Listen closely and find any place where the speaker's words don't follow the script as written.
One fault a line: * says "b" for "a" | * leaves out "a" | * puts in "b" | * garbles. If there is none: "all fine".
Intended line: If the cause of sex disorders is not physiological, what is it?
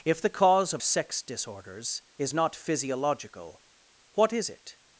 all fine